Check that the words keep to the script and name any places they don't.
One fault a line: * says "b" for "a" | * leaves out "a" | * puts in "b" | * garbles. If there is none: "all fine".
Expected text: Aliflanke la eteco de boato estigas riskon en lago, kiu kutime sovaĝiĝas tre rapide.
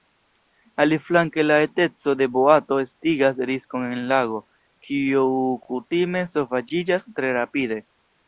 all fine